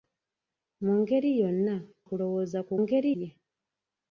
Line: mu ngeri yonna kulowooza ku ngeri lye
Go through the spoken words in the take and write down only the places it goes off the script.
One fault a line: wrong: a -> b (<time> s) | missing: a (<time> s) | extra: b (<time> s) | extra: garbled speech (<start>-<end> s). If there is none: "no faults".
no faults